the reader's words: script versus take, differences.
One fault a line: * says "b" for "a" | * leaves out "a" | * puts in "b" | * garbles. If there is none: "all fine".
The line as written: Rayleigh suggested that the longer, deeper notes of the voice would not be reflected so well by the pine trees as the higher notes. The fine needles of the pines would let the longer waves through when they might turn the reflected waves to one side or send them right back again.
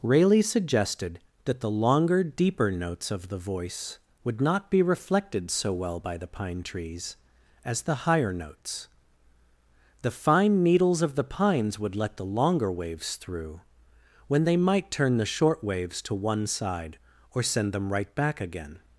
* says "short" for "reflected"